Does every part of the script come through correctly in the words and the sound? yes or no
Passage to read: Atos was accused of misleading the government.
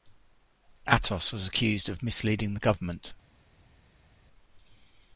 yes